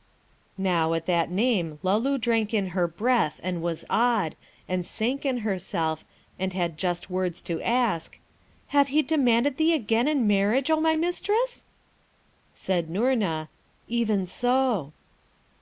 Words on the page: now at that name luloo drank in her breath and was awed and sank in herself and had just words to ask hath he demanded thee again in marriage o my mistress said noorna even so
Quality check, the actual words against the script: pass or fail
pass